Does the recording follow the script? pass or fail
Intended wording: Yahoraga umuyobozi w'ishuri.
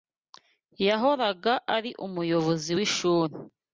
fail